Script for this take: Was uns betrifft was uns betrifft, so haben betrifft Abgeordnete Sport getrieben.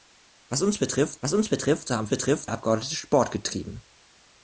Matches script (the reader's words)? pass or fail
pass